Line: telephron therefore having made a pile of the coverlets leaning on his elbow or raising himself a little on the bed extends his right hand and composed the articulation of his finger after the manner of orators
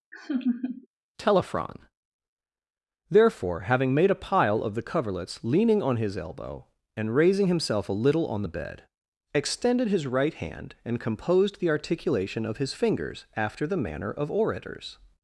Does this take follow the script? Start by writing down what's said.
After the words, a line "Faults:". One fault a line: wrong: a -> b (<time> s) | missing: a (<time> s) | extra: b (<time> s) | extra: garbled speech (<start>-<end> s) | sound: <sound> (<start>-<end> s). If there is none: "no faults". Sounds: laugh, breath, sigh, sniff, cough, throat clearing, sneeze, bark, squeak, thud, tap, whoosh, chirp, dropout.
telephron therefore having made a pile of the coverlets leaning on his elbow and raising himself a little on the bed extended his right hand and composed the articulation of his fingers after the manner of orators
Faults:
sound: laugh (0.1-0.9 s)
wrong: or -> and (7.0 s)
wrong: extends -> extended (9.3 s)
wrong: finger -> fingers (12.7 s)